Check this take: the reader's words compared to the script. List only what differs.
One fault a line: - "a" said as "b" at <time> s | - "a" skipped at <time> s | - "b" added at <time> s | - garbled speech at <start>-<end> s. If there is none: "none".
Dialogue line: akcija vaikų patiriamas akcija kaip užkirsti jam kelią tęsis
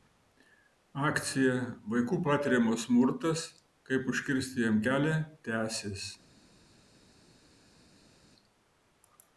- "akcija" said as "smurtas" at 2.9 s